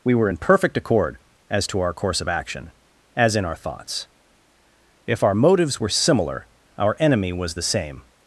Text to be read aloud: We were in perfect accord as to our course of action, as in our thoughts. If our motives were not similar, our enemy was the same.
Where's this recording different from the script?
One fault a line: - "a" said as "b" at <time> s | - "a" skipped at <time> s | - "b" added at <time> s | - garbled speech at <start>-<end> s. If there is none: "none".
- "not" skipped at 5.9 s